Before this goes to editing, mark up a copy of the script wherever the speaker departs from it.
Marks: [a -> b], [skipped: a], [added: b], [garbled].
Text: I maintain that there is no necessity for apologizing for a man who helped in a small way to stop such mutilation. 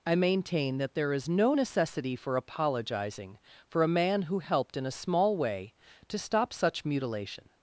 I maintain that there is no necessity for apologizing for a man who helped in a small way to stop such mutilation.